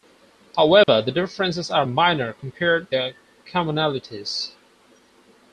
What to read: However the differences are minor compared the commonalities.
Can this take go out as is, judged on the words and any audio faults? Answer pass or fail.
fail